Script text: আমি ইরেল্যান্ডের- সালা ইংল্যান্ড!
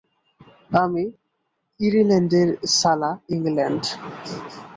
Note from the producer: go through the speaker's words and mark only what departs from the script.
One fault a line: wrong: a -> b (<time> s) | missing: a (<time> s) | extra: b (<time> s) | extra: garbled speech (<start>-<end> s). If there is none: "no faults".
no faults